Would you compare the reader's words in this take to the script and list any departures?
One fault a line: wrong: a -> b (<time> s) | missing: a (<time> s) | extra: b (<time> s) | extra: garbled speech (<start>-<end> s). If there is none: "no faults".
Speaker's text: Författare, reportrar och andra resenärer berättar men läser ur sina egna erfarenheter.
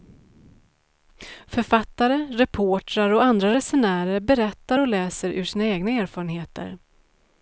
wrong: men -> och (4.8 s)